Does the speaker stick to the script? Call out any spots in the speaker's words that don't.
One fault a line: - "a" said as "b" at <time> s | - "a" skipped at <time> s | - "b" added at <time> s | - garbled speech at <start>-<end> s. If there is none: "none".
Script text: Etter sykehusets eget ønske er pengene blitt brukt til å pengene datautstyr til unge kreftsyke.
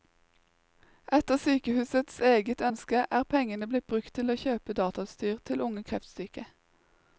- "pengene" said as "kjøpe" at 4.4 s